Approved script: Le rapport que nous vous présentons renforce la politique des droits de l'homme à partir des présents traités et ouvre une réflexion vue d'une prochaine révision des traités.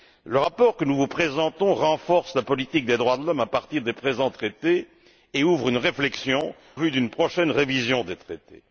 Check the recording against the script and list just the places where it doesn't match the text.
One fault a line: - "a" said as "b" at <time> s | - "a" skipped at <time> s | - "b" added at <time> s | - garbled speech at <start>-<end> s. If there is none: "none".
none